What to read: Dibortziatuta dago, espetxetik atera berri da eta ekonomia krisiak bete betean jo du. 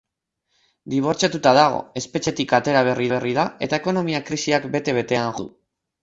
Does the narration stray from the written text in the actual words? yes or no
yes